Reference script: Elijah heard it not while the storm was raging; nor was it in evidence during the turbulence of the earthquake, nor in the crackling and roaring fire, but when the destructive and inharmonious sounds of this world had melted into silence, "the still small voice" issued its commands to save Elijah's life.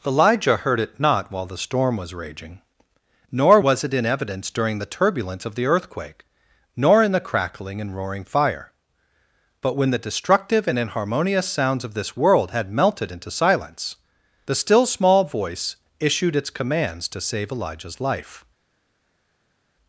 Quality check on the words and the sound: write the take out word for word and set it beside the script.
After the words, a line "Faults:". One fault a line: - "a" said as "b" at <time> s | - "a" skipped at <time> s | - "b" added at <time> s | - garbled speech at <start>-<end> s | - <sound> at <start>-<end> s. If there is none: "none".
Elijah heard it not while the storm was raging; nor was it in evidence during the turbulence of the earthquake, nor in the crackling and roaring fire, but when the destructive and inharmonious sounds of this world had melted into silence, "the still small voice" issued its commands to save Elijah's life.
Faults:
none